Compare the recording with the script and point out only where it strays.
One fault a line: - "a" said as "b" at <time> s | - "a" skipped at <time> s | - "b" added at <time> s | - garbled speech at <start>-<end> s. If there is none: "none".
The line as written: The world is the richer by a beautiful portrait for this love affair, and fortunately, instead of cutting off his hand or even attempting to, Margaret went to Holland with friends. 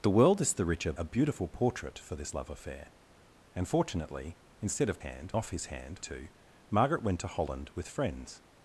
- "by" skipped at 0.9 s
- "cutting" said as "hand" at 5.0 s
- "or even attempting" skipped at 6.0 s